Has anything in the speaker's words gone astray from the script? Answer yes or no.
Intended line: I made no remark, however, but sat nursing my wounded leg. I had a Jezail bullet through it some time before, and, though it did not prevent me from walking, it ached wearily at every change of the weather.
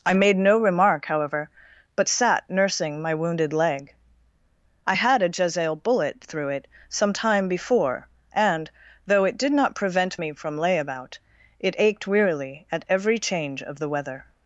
yes